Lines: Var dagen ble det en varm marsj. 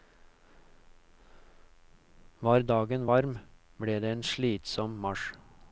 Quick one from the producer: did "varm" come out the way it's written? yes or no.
no